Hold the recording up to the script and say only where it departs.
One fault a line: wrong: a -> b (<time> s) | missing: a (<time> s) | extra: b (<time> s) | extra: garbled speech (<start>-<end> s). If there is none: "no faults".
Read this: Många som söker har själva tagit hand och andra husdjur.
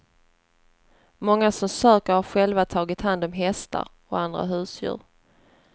extra: om hästar (3.2 s)